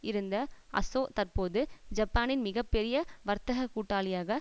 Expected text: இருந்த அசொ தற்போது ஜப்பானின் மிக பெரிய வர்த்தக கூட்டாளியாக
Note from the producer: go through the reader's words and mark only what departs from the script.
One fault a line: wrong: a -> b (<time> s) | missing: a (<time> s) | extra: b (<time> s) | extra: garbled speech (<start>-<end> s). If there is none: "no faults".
no faults